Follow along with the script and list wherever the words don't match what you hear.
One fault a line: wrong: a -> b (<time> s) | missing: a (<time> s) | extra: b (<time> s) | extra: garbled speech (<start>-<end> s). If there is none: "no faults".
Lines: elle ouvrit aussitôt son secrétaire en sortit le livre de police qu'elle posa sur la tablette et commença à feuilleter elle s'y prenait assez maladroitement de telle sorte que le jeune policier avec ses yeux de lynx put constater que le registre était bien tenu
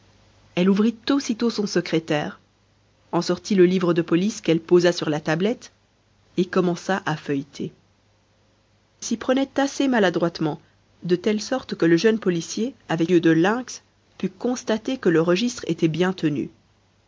missing: elle (7.7 s)
missing: ses (13.1 s)